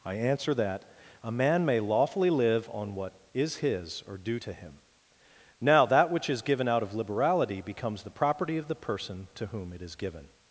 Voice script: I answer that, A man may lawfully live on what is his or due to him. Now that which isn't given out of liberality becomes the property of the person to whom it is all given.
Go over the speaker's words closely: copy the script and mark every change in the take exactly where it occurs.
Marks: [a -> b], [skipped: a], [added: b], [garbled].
I answer that, A man may lawfully live on what is his or due to him. Now that which [isn't -> is] given out of liberality becomes the property of the person to whom it is [skipped: all] given.